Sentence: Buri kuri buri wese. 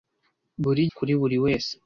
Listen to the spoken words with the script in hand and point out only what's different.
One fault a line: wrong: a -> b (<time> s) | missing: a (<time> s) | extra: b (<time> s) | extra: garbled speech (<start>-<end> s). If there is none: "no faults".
no faults